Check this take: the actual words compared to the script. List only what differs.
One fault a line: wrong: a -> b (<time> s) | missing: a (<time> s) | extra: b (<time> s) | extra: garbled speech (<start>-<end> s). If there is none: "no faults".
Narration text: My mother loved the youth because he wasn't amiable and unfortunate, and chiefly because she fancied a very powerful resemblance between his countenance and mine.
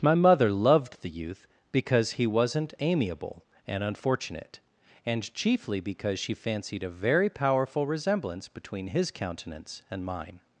no faults